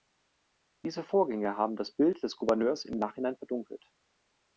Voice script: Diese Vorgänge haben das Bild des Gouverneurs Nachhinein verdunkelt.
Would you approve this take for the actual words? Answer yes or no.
no